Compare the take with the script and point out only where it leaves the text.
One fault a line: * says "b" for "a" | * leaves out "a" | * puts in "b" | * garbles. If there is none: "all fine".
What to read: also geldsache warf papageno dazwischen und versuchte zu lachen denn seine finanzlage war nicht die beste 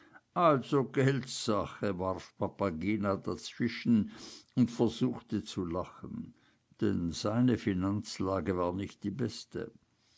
all fine